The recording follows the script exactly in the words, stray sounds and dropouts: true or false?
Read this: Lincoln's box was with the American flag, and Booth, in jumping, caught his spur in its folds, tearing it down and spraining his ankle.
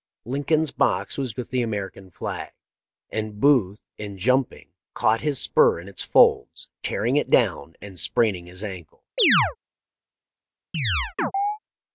false